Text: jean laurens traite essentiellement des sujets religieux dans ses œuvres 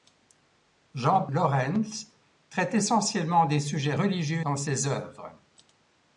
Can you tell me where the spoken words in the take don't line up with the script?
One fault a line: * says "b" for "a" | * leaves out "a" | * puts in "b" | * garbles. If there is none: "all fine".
all fine